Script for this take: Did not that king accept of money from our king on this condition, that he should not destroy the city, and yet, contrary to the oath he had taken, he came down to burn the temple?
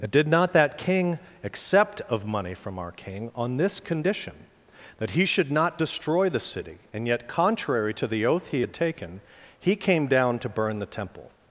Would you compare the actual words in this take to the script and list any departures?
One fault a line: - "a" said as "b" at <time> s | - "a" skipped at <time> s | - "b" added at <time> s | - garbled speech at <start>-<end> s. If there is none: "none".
none